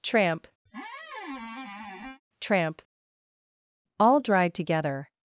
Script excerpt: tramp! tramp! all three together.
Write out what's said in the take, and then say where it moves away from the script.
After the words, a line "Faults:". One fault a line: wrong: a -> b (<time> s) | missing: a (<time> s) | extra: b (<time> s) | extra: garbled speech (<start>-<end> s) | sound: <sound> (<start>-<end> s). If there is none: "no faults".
tramp! tramp! all dried together.
Faults:
sound: squeak (0.7-2.2 s)
wrong: three -> dried (4.2 s)